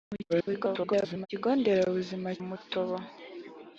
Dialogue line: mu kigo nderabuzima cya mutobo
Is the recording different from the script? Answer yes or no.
yes